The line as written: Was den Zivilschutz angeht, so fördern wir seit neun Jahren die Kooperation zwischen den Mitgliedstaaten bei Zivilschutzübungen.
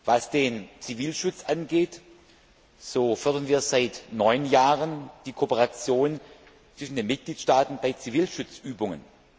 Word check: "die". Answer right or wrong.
right